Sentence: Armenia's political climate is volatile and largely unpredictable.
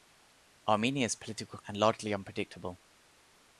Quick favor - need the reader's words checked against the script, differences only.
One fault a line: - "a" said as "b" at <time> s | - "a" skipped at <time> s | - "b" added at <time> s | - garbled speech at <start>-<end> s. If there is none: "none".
- "climate is volatile" skipped at 1.6 s